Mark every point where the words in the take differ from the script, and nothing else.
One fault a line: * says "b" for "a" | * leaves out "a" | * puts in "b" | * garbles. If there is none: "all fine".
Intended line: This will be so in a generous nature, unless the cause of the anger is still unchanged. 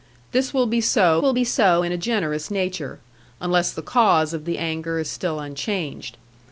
* puts in "will be so"